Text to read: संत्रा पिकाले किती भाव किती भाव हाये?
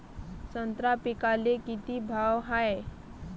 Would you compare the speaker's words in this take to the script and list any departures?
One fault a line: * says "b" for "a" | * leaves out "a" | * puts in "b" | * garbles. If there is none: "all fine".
* leaves out "किती भाव"